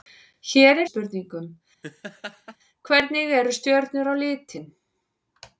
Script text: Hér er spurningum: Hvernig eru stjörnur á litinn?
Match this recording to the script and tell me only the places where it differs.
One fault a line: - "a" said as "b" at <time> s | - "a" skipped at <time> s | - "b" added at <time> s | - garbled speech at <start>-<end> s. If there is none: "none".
none